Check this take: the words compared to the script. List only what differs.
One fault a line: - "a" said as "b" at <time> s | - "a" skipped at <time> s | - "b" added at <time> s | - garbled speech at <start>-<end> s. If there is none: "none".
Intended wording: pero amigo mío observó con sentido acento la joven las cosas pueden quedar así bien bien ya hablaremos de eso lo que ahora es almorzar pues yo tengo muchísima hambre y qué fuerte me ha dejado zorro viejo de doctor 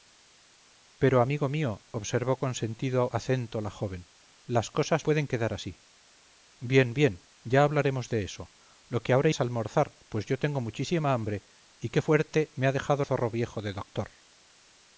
none